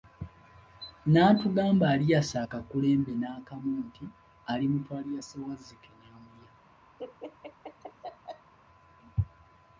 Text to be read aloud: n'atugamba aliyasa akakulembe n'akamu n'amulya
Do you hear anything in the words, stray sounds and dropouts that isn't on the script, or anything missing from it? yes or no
yes